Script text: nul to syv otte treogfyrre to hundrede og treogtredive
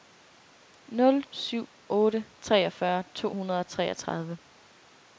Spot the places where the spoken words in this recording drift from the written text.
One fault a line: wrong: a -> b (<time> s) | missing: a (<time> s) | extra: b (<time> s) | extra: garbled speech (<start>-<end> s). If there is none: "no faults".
missing: to (1.2 s)